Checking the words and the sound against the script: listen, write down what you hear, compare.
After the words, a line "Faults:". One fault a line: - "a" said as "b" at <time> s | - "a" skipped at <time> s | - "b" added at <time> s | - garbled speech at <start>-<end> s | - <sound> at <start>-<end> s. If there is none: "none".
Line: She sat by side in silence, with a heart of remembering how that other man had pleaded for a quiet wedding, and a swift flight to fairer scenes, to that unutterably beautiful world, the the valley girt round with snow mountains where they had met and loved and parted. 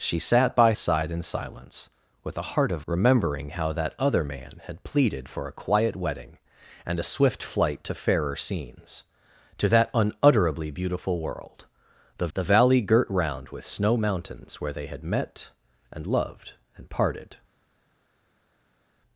She sat by side in silence, with a heart of remembering how that other man had pleaded for a quiet wedding, and a swift flight to fairer scenes, to that unutterably beautiful world, the the valley girt round with snow mountains where they had met and loved and parted.
Faults:
none